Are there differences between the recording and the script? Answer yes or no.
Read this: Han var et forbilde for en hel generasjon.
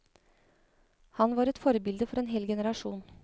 no